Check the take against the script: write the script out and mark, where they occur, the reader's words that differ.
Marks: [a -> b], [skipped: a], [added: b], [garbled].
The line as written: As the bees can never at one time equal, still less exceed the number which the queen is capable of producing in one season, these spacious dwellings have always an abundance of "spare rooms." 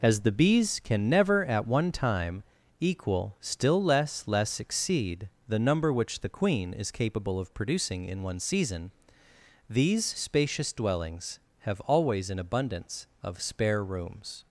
As the bees can never at one time equal, still less [added: less] exceed the number which the queen is capable of producing in one season, these spacious dwellings have always an abundance of "spare rooms."